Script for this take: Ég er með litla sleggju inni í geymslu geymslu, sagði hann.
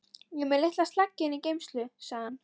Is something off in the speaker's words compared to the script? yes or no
yes